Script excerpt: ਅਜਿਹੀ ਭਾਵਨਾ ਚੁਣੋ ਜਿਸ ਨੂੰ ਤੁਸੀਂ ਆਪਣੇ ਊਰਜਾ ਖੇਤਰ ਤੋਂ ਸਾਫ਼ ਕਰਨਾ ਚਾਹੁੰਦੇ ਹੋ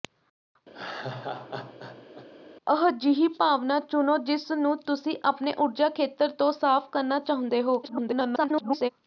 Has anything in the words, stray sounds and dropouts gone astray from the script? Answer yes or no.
yes